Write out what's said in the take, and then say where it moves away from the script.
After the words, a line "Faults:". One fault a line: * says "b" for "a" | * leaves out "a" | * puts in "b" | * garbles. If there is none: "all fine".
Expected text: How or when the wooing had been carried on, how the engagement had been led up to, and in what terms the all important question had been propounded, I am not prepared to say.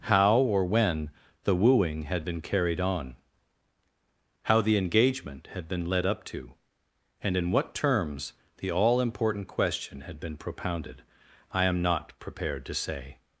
How or when the wooing had been carried on, how the engagement had been led up to, and in what terms the all important question had been propounded, I am not prepared to say.
Faults:
all fine